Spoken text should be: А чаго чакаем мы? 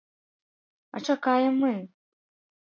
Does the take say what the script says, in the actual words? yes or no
no